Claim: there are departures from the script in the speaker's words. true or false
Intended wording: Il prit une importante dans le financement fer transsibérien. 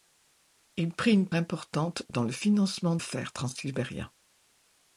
false